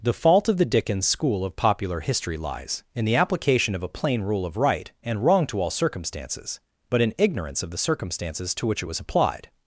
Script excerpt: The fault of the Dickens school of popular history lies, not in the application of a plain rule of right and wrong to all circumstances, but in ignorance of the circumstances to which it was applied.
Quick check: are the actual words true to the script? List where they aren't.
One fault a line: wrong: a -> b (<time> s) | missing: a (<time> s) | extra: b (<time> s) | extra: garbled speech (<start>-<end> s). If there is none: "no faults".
missing: not (2.8 s)